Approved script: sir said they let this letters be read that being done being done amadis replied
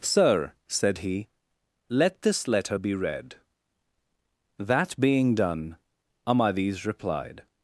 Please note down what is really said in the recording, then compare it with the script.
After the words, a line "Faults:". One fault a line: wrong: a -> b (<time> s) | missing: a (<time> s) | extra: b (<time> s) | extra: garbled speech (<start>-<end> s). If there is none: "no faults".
sir said he let this letter be read that being done amadis replied
Faults:
wrong: they -> he (1.0 s)
wrong: letters -> letter (2.5 s)
missing: being done (5.8 s)